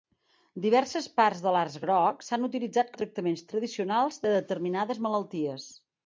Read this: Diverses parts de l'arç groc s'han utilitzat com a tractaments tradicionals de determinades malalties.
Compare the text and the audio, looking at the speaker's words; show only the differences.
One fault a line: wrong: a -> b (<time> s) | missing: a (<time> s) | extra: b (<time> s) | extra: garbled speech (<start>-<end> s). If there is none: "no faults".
missing: com (2.9 s)